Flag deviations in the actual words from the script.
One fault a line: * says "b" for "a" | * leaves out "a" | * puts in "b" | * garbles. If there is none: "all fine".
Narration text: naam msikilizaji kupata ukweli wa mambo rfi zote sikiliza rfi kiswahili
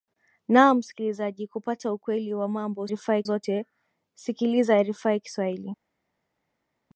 all fine